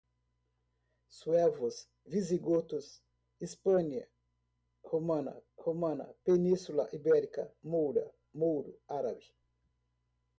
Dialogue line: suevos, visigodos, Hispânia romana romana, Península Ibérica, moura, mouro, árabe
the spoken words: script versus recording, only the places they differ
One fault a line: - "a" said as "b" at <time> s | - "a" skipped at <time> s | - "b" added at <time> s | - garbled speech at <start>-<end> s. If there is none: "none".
none